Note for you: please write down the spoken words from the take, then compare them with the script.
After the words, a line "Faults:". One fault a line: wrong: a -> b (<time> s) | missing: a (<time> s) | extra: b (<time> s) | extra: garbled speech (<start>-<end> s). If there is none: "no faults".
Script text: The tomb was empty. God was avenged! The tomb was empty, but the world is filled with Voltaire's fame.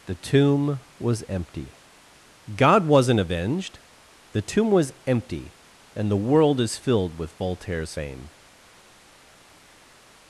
The tomb was empty. God wasn't avenged! The tomb was empty, and the world is filled with Voltaire's fame.
Faults:
wrong: was -> wasn't (2.9 s)
wrong: but -> and (6.0 s)